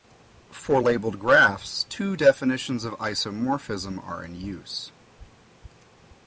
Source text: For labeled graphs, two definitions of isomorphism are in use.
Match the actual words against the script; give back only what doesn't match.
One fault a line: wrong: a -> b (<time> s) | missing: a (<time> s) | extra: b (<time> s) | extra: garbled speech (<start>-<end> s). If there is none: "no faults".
no faults